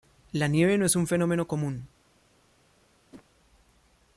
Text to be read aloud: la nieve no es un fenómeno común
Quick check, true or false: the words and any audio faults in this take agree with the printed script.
false